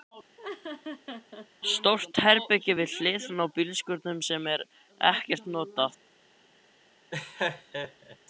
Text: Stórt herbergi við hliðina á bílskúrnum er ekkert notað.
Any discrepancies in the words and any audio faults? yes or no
yes